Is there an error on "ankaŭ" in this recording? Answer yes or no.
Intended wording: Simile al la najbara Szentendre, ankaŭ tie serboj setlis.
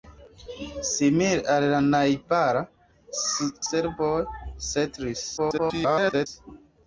yes